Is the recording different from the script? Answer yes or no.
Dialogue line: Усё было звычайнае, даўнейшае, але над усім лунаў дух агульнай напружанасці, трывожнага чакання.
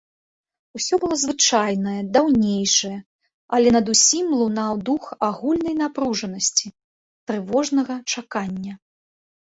no